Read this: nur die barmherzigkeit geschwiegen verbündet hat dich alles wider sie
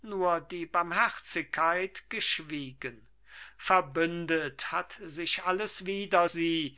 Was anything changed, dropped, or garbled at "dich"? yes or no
yes